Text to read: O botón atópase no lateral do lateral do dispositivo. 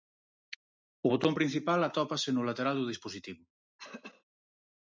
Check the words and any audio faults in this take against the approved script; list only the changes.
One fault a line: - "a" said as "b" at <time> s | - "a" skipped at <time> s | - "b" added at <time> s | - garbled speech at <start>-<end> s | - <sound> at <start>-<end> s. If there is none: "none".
- "principal" added at 1.4 s
- "lateral do" skipped at 2.9 s
- throat clearing at 3.8-4.2 s